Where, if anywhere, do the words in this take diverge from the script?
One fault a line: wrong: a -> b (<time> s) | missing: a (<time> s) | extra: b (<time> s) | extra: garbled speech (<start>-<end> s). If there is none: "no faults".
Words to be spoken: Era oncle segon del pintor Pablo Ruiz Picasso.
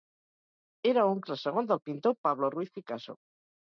no faults